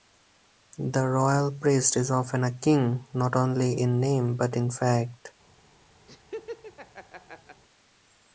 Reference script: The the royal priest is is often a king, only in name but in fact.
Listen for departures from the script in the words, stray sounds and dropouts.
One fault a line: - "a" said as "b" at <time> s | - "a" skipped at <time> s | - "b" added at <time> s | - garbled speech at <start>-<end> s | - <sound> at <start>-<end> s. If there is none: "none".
- "the" skipped at 1.1 s
- "is" skipped at 2.1 s
- "not" added at 3.1 s
- laugh at 6.1-7.6 s